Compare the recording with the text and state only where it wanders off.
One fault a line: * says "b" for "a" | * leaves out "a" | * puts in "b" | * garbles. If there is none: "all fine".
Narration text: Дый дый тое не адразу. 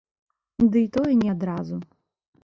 * leaves out "дый"